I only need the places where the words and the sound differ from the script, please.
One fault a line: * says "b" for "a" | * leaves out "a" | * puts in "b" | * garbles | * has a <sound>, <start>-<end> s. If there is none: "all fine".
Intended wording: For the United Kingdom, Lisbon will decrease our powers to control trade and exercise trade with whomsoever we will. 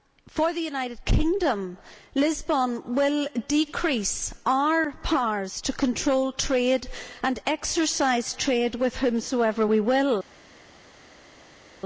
all fine